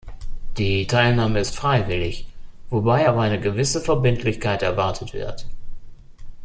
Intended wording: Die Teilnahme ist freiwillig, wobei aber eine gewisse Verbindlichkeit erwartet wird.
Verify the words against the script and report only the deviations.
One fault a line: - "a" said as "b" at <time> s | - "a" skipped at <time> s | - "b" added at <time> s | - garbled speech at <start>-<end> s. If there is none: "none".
none